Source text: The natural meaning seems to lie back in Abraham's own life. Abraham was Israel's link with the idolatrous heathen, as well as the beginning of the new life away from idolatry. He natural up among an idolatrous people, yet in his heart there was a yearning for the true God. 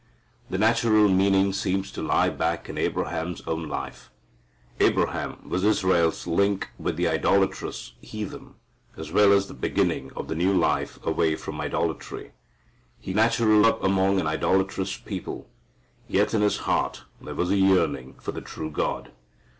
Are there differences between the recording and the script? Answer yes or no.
no